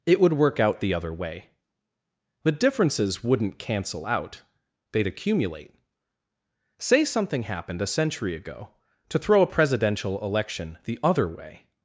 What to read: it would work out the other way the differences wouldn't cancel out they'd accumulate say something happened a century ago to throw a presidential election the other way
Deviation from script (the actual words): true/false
false